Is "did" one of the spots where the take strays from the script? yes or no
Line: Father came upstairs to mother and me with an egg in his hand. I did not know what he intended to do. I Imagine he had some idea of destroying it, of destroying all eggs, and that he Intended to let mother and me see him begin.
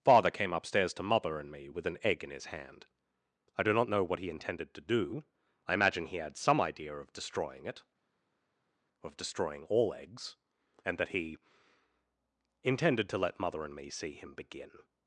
yes